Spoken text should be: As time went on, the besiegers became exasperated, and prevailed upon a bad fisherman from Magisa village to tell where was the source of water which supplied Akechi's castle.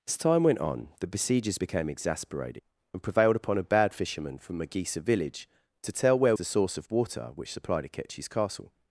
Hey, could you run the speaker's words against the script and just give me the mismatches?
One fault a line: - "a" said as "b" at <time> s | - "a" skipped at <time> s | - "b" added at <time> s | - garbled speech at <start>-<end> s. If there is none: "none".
- "was" skipped at 6.3 s